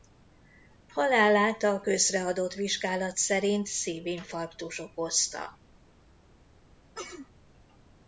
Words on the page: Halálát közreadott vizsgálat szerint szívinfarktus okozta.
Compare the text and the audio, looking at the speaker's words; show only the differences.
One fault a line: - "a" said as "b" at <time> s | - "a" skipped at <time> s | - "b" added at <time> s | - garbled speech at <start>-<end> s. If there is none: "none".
- "a" added at 1.6 s